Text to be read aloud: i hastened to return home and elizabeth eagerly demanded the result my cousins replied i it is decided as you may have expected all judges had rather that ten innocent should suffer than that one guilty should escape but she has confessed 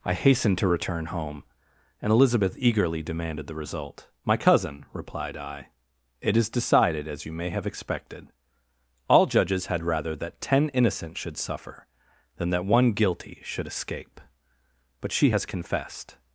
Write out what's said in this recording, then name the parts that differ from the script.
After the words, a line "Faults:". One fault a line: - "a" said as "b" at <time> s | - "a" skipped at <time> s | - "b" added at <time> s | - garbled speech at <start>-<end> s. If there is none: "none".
i hastened to return home and elizabeth eagerly demanded the result my cousin replied i it is decided as you may have expected all judges had rather that ten innocent should suffer than that one guilty should escape but she has confessed
Faults:
- "cousins" said as "cousin" at 4.4 s